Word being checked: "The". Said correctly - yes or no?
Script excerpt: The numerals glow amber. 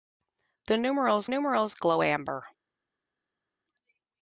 yes